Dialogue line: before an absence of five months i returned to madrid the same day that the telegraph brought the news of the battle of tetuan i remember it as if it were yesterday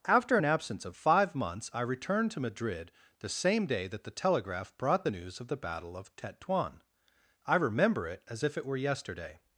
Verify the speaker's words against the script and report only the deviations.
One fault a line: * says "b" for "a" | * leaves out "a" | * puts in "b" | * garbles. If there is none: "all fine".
* says "after" for "before"